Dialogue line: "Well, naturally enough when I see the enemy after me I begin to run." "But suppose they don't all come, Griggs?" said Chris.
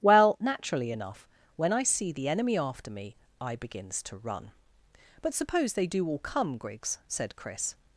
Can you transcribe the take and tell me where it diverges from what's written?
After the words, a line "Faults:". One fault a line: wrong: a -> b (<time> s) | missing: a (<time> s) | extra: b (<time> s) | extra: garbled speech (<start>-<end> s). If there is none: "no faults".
"Well, naturally enough when I see the enemy after me I begins to run." "But suppose they do all come, Griggs?" said Chris.
Faults:
wrong: begin -> begins (3.6 s)
wrong: don't -> do (5.9 s)